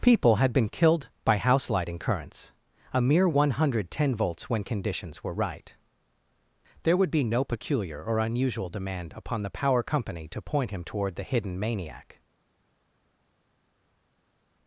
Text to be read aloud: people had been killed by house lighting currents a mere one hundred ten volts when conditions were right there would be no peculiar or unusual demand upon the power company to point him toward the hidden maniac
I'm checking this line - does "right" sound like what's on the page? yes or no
yes